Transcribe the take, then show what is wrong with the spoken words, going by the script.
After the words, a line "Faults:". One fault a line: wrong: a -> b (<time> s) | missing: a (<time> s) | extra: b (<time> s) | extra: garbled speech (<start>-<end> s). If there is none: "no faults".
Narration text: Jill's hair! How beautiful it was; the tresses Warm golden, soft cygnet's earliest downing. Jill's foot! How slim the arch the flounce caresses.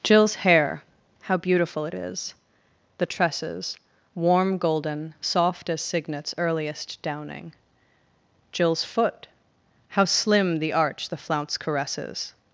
Jill's hair! How beautiful it is; the tresses Warm golden, soft as cygnet's earliest downing. Jill's foot! How slim the arch the flounce caresses.
Faults:
wrong: was -> is (1.9 s)
extra: as (5.7 s)